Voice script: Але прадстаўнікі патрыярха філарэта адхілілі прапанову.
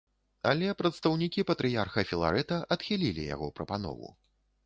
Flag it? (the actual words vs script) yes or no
yes